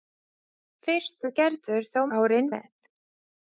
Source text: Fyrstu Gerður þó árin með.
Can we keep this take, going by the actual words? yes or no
yes